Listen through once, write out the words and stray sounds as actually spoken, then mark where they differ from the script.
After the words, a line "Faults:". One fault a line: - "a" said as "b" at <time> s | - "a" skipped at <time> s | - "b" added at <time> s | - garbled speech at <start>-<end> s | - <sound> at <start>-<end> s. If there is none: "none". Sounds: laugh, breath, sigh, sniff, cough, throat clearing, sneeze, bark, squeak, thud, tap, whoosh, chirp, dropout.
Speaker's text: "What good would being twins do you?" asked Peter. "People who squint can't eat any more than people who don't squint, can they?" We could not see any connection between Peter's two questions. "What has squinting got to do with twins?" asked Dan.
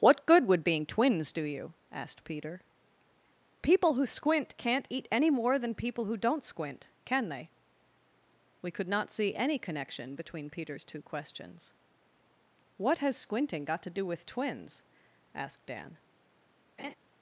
"What good would being twins do you?" asked Peter. "People who squint can't eat any more than people who don't squint, can they?" We could not see any connection between Peter's two questions. "What has squinting got to do with twins?" asked Dan.
Faults:
- laugh at 16.8-16.9 s